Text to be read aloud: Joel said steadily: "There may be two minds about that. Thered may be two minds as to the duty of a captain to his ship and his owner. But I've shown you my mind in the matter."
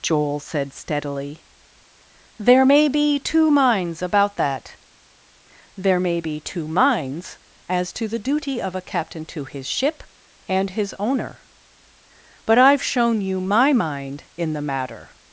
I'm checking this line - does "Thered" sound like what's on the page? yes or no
no